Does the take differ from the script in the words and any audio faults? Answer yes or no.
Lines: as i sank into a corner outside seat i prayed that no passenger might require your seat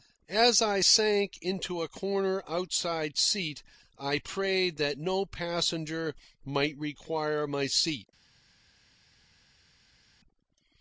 yes